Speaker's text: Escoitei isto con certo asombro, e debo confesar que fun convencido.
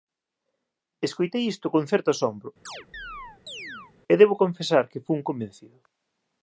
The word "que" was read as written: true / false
true